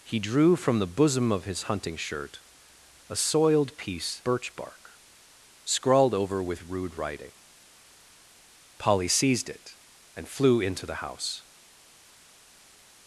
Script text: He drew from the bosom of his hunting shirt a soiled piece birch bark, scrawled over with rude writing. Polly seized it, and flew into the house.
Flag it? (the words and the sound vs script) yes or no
no